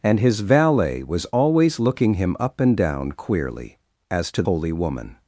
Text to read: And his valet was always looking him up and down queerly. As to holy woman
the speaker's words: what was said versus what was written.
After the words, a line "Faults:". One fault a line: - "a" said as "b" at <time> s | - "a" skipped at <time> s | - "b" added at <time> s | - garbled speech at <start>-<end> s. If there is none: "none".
And his valet was always looking him up and down queerly. As to holy woman
Faults:
none